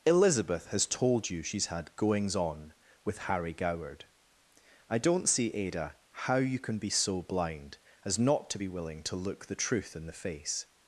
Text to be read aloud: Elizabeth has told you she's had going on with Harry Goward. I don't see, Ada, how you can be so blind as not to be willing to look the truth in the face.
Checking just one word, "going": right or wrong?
wrong